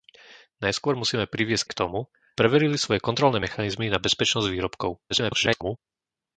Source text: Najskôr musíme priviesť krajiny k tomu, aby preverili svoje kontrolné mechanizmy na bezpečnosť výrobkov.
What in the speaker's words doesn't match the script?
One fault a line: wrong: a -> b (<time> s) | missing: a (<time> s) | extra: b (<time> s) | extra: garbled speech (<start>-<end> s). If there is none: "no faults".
missing: krajiny (1.7 s)
missing: aby (2.1 s)
extra: garbled speech (5.1-5.8 s)